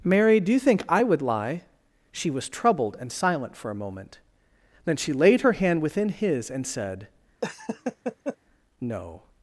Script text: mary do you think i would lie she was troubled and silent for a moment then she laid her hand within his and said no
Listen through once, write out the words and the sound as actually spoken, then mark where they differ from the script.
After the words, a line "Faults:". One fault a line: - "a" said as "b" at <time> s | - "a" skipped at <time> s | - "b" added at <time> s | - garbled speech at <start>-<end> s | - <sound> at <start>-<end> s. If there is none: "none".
mary do you think i would lie she was troubled and silent for a moment then she laid her hand within his and said no
Faults:
- laugh at 7.4-8.4 s